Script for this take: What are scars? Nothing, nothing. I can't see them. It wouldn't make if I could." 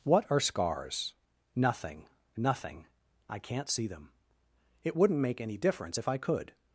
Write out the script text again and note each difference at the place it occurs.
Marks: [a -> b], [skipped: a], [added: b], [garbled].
What are scars? Nothing, nothing. I can't see them. It wouldn't make [added: any difference] if I could."